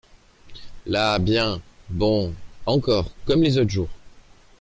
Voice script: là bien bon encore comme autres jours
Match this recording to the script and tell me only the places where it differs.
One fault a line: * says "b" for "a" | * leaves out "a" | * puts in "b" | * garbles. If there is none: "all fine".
* puts in "les"